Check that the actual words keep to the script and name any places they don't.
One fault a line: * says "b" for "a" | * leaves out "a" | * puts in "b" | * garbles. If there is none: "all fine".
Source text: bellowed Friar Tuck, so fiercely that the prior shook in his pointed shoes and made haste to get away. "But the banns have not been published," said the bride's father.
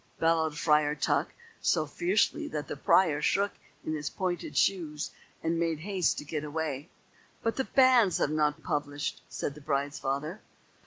* leaves out "been"